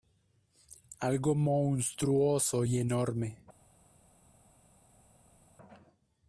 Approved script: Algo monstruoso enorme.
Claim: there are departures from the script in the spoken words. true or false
true